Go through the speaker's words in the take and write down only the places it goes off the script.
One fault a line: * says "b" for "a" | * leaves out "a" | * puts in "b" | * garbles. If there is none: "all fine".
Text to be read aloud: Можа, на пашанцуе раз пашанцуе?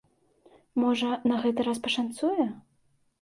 * says "гэты" for "пашанцуе"